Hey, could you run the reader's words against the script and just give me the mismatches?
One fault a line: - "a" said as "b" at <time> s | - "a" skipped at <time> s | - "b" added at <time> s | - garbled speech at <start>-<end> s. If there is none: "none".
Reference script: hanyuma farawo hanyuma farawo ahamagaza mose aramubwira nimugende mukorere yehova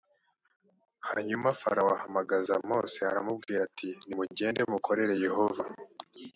- "hanyuma farawo" skipped at 1.9 s
- "ati" added at 3.7 s